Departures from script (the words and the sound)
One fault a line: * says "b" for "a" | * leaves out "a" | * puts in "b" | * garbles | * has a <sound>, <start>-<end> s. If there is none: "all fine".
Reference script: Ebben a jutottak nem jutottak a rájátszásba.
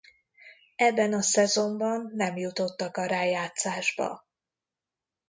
* says "szezonban" for "jutottak"